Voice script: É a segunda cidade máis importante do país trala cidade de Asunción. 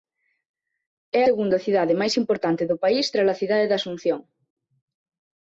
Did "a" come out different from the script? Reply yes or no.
yes